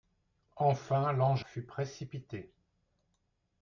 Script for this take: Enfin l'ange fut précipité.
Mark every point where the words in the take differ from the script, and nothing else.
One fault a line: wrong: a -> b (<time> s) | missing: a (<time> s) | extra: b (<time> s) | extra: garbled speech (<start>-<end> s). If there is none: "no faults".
no faults